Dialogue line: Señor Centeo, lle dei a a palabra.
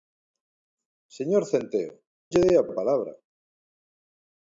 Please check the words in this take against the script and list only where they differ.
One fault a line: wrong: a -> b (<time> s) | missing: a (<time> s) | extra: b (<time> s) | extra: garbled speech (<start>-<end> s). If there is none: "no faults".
no faults